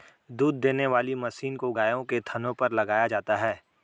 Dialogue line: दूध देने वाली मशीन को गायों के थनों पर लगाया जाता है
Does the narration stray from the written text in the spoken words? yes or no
no